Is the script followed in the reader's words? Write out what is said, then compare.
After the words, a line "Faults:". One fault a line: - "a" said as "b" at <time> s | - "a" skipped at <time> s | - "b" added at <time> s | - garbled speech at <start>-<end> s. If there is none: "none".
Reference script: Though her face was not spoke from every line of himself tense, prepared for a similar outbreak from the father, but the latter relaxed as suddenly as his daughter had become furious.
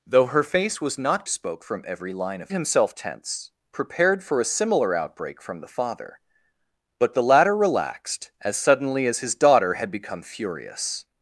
Though her face was not spoke from every line of himself tense, prepared for a similar outbreak from the father, but the latter relaxed as suddenly as his daughter had become furious.
Faults:
none